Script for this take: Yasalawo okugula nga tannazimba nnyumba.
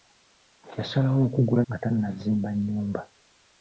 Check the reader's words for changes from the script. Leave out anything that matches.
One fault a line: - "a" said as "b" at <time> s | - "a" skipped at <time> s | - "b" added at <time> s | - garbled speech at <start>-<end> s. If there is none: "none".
none